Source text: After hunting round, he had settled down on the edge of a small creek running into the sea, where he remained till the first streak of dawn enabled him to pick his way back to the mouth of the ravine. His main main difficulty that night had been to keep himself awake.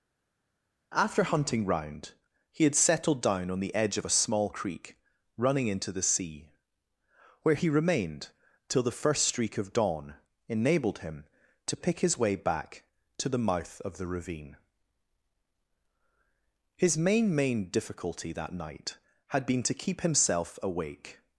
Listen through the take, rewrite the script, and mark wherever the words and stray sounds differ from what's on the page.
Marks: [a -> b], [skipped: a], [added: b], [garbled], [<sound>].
After hunting round, he had settled down on the edge of a small creek running into the sea, where he remained till the first streak of dawn enabled him to pick his way back to the mouth of the ravine. His main main difficulty that night had been to keep himself awake.